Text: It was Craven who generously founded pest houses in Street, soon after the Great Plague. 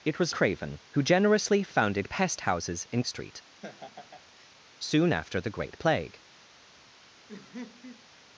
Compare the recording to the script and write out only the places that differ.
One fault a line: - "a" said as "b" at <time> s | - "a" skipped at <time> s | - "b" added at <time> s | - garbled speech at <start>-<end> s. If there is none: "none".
none